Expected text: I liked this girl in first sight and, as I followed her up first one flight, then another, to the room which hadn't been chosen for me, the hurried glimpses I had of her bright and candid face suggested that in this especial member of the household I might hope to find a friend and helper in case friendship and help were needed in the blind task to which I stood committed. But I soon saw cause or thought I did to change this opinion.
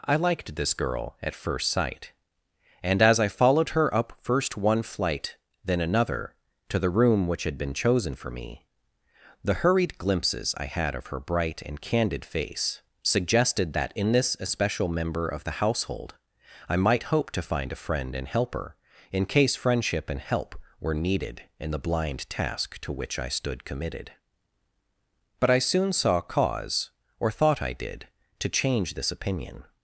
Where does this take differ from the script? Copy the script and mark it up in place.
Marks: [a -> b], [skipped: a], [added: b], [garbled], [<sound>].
I liked this girl [in -> at] first sight and, as I followed her up first one flight, then another, to the room which [hadn't -> had] been chosen for me, the hurried glimpses I had of her bright and candid face suggested that in this especial member of the household I might hope to find a friend and helper in case friendship and help were needed in the blind task to which I stood committed. But I soon saw cause or thought I did to change this opinion.